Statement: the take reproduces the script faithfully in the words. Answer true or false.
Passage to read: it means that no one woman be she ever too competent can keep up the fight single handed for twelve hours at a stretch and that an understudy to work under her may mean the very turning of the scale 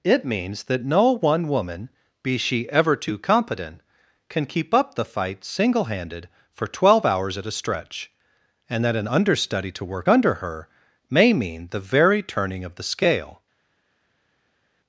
true